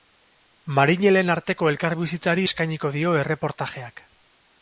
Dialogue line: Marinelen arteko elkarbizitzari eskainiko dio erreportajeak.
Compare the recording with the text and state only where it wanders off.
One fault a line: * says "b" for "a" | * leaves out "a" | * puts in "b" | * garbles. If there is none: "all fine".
all fine